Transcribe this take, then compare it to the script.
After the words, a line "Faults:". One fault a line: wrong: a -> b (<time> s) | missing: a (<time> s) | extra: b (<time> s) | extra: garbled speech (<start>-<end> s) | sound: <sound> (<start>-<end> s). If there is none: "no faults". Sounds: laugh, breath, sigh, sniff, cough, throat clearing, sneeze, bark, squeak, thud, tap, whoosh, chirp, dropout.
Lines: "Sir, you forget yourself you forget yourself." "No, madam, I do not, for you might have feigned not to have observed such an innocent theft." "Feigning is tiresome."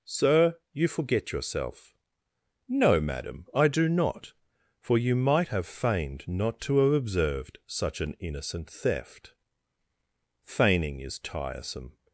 "Sir, you forget yourself." "No, madam, I do not, for you might have feigned not to have observed such an innocent theft." "Feigning is tiresome."
Faults:
missing: you forget yourself (1.9 s)